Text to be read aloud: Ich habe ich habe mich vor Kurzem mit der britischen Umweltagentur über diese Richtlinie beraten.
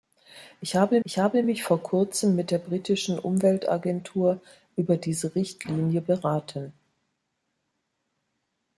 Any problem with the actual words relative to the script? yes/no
no